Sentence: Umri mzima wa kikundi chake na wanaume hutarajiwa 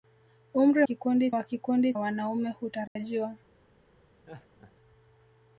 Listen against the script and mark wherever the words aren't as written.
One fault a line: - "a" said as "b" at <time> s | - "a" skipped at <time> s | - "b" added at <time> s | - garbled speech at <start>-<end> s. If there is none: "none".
- "mzima" said as "kikundi" at 0.8 s
- "chake na" skipped at 1.9 s